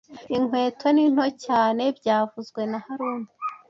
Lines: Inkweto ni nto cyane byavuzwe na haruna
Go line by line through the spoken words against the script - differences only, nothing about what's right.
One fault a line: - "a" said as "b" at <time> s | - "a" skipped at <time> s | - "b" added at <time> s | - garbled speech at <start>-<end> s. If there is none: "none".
none